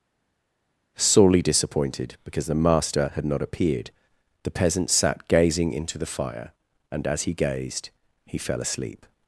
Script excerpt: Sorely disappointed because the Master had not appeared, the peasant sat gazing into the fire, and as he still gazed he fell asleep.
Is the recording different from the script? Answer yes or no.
yes